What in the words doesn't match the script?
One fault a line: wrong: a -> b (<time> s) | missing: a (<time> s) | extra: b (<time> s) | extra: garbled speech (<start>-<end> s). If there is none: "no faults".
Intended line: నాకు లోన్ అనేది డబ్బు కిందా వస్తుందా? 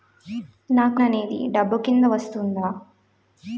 missing: లోన్ (1.0 s)